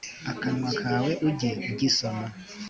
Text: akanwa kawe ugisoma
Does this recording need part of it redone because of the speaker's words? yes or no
yes